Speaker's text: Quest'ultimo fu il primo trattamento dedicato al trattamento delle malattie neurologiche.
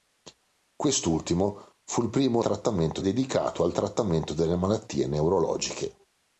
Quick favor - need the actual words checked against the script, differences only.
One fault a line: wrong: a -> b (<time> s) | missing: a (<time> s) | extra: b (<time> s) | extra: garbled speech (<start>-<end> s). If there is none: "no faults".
no faults